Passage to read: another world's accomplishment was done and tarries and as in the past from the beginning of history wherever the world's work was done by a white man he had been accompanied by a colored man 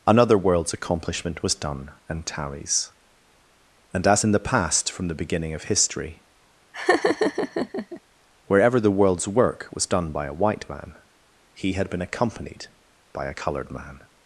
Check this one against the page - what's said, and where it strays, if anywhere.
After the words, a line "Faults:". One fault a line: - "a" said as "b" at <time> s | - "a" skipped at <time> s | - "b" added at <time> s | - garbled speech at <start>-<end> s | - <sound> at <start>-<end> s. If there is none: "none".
another world's accomplishment was done and tarries and as in the past from the beginning of history wherever the world's work was done by a white man he had been accompanied by a colored man
Faults:
- laugh at 6.7-8.0 s